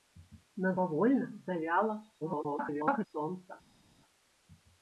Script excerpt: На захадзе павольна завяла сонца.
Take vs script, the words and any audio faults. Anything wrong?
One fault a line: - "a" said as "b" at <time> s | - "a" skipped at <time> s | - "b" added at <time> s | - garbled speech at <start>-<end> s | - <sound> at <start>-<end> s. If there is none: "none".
- "захадзе" skipped at 0.7 s
- garbled speech at 2.2-3.1 s